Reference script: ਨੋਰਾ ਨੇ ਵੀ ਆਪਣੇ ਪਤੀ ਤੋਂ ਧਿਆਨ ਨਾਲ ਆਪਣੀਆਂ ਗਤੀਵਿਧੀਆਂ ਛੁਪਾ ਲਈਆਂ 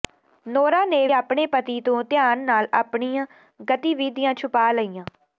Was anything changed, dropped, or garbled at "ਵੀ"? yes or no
yes